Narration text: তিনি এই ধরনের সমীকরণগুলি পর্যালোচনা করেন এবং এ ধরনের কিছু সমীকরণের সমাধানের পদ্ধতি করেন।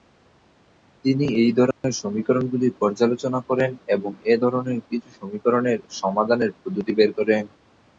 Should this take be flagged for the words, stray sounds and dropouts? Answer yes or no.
yes